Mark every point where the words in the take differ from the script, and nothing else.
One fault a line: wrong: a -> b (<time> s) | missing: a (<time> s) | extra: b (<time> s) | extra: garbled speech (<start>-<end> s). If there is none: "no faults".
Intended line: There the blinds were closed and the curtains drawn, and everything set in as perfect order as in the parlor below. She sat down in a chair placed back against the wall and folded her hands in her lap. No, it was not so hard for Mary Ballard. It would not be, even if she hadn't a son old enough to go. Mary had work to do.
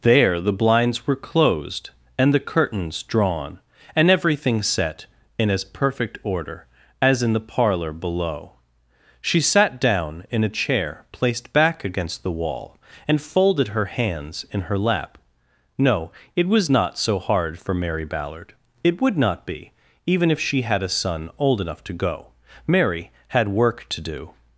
wrong: hadn't -> had (20.6 s)